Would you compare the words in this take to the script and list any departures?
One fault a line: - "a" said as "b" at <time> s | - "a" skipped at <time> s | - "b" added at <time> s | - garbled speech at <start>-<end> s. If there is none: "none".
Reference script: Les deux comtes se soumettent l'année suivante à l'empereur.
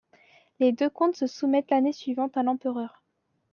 none